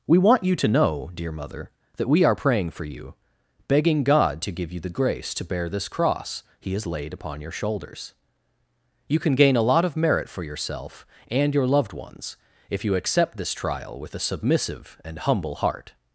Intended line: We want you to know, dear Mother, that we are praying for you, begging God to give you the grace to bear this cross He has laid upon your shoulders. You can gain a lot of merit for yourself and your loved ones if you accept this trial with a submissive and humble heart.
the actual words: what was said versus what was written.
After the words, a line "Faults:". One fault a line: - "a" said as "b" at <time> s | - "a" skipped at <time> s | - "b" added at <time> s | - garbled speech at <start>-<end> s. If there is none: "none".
We want you to know, dear Mother, that we are praying for you, begging God to give you the grace to bear this cross He has laid upon your shoulders. You can gain a lot of merit for yourself and your loved ones if you accept this trial with a submissive and humble heart.
Faults:
none